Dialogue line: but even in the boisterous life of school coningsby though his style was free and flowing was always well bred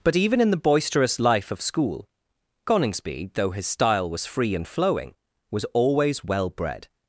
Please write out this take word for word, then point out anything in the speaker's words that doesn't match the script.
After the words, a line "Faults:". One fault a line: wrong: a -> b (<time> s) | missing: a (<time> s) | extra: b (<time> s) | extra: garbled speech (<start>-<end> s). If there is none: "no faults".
but even in the boisterous life of school coningsby though his style was free and flowing was always well bred
Faults:
no faults